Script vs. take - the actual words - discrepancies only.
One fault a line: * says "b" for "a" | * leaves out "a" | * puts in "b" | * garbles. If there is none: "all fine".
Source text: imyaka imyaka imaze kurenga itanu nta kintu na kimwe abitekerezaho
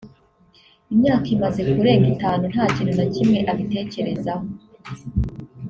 * leaves out "imyaka"